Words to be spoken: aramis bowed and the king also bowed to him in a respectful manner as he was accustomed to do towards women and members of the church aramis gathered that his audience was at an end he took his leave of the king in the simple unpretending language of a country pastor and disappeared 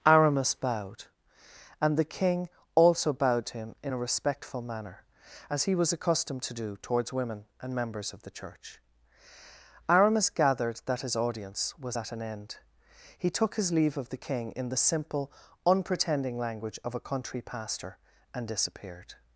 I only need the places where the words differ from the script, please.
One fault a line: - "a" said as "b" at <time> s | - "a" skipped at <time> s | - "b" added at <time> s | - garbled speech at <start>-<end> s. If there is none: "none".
none